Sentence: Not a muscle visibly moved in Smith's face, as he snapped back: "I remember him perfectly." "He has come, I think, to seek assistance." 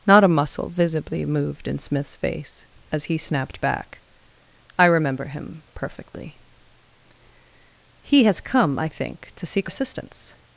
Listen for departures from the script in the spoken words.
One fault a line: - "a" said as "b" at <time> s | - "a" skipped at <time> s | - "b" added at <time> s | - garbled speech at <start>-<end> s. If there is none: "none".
none